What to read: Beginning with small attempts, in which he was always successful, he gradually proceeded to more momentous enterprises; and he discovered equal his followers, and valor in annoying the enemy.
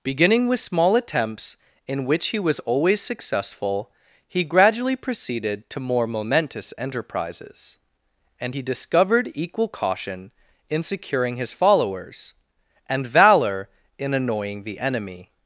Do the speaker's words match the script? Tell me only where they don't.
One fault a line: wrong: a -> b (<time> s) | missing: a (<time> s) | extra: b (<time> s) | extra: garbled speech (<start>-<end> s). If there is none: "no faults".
extra: caution in securing (9.7 s)